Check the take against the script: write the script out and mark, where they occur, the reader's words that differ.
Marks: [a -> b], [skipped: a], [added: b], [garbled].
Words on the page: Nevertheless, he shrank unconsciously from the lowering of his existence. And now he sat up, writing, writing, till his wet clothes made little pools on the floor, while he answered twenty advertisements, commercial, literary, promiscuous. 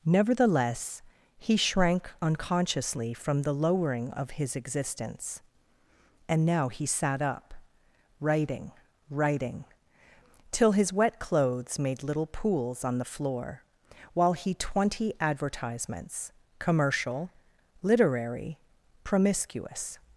Nevertheless, he shrank unconsciously from the lowering of his existence. And now he sat up, writing, writing, till his wet clothes made little pools on the floor, while he [skipped: answered] twenty advertisements, commercial, literary, promiscuous.